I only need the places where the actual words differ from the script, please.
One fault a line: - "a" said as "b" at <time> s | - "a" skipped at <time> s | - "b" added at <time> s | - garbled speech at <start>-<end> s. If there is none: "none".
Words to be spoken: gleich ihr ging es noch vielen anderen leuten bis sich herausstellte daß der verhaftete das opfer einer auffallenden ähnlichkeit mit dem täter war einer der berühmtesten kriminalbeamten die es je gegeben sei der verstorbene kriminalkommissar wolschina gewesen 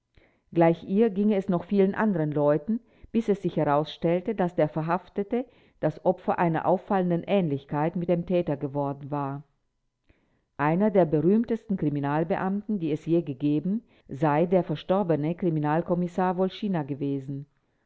- "es" added at 3.3 s
- "geworden" added at 8.5 s